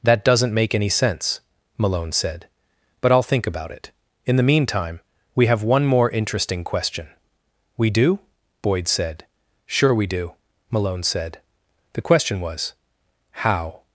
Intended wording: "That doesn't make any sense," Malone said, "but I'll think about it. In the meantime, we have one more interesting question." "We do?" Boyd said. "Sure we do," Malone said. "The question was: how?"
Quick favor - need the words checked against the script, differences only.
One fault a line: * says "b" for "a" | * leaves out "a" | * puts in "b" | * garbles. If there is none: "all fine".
all fine